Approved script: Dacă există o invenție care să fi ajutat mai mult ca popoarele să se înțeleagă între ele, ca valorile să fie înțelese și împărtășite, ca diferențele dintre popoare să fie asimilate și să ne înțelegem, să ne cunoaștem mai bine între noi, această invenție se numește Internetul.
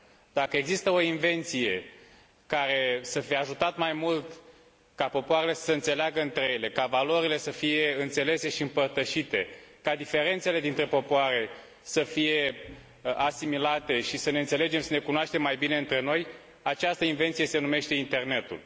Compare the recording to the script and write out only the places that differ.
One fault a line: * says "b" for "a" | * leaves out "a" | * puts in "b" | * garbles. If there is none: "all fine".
all fine